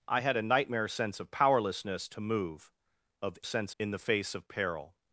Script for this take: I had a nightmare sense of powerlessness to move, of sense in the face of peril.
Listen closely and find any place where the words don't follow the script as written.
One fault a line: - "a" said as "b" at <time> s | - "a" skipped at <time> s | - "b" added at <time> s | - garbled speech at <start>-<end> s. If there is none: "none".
none